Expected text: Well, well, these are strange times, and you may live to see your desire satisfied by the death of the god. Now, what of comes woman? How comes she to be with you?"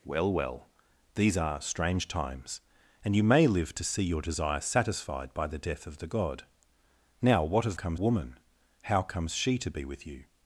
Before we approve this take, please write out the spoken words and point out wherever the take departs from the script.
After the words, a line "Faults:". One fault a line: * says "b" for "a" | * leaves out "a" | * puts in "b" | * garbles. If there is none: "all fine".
Well, well, these are strange times, and you may live to see your desire satisfied by the death of the god. Now, what of comes woman? How comes she to be with you?"
Faults:
all fine